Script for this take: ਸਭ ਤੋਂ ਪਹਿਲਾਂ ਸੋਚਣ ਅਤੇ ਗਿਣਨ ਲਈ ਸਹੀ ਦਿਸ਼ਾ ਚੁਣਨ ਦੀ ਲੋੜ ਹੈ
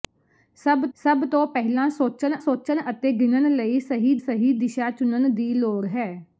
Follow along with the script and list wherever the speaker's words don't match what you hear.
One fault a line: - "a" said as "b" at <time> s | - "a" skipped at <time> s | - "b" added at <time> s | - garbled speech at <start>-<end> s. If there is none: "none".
- "ਸਭ" added at 1.0 s
- "ਸੋਚਣ" added at 2.4 s
- "ਸਹੀ" added at 4.2 s